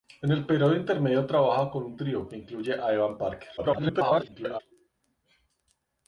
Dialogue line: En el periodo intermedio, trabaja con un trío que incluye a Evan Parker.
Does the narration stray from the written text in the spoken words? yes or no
yes